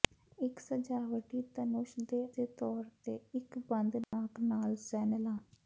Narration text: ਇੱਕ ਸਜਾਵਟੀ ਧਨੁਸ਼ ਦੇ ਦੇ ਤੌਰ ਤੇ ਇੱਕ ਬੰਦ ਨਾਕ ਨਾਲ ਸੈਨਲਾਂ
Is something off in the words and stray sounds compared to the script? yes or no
yes